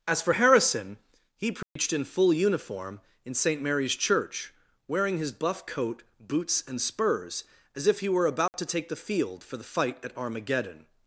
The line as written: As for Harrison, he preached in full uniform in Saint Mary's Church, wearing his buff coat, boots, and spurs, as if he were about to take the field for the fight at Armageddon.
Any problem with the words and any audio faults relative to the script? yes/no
yes